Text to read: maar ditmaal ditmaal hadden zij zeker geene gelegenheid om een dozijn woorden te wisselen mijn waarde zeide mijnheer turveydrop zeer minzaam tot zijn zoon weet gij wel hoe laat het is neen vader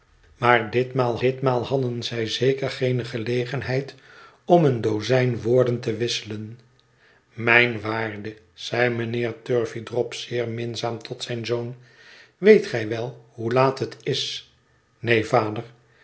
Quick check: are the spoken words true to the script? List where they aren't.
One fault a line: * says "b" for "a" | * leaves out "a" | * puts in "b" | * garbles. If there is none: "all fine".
all fine